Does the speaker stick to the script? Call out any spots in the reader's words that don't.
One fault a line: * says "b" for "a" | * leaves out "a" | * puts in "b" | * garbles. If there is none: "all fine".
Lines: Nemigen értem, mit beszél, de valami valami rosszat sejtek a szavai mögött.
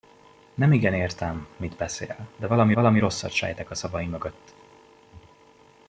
all fine